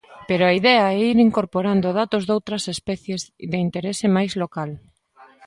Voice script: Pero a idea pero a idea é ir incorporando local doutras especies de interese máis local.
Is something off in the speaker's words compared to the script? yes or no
yes